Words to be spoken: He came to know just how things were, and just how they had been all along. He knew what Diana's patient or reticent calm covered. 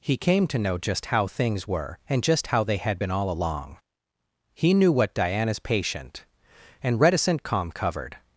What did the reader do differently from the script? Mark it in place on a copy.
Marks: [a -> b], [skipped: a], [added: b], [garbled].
He came to know just how things were, and just how they had been all along. He knew what Diana's patient [or -> and] reticent calm covered.